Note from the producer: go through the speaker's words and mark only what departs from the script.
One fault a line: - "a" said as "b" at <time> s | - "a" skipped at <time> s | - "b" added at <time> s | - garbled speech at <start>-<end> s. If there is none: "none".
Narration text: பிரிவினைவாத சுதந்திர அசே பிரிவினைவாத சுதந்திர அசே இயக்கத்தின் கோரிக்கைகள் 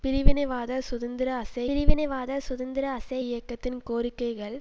none